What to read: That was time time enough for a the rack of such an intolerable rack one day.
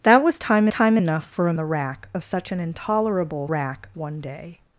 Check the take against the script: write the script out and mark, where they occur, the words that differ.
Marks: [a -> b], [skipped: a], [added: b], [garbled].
That was time time enough for a the rack of such an intolerable rack one day.